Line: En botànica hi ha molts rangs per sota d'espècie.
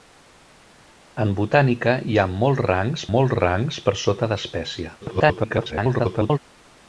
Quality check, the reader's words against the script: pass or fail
fail